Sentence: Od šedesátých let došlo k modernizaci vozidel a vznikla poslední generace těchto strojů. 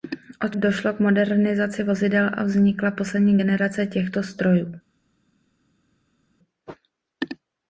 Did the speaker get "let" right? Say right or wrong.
wrong